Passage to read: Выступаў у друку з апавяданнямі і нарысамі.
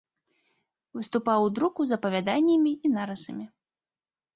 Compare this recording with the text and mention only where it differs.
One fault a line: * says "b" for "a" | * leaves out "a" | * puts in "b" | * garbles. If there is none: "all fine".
all fine